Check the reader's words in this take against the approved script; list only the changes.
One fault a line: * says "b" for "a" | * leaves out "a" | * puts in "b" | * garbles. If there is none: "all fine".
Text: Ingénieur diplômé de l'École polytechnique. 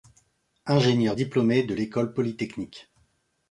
all fine